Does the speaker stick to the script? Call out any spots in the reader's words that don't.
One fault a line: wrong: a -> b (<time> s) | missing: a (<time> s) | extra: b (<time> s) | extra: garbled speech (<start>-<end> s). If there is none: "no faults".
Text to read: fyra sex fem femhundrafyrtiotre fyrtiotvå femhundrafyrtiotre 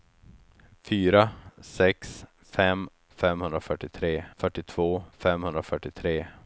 no faults